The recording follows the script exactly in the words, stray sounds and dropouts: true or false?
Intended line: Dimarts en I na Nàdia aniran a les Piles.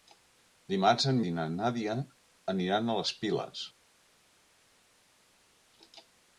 true